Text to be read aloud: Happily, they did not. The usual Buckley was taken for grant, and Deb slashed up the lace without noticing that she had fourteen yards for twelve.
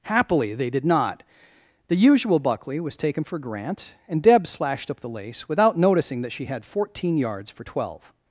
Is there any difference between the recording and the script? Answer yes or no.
no